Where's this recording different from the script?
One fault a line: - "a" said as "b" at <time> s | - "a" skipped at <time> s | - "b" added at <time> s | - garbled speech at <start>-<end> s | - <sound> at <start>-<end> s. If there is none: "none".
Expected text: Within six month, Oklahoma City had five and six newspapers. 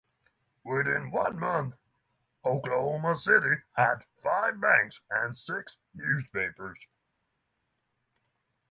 - "six" said as "one" at 1.1 s
- "banks" added at 4.6 s